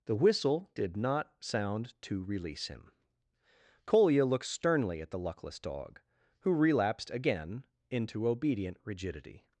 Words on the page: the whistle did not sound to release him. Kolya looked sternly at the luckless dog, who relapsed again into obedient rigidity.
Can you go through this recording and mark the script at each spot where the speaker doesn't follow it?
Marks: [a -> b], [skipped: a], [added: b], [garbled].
the whistle did not sound to release him. Kolya looked sternly at the luckless dog, who relapsed again into obedient rigidity.